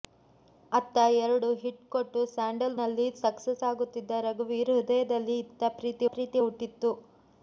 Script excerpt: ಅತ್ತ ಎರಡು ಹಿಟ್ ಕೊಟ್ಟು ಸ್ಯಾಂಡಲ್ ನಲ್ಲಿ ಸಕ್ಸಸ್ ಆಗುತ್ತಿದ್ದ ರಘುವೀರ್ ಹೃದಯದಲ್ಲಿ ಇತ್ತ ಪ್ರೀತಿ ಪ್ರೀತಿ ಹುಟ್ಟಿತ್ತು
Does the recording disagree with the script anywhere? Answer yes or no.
no